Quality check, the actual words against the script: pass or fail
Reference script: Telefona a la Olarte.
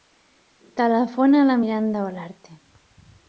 fail